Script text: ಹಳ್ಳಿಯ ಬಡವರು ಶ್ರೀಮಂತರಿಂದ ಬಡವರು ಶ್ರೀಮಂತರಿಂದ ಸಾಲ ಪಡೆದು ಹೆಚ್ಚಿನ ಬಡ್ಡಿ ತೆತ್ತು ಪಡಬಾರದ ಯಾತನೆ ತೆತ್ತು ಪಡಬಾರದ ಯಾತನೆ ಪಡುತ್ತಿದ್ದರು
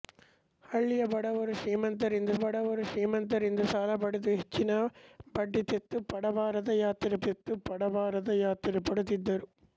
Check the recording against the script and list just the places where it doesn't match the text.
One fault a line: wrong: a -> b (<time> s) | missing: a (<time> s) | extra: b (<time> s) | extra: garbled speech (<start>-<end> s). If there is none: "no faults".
no faults